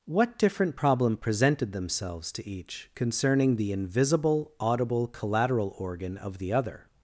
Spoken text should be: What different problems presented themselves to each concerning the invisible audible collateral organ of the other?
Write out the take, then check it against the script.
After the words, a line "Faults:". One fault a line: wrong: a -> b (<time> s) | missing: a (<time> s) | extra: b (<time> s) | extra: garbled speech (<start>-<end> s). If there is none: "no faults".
What different problem presented themselves to each concerning the invisible audible collateral organ of the other?
Faults:
wrong: problems -> problem (0.8 s)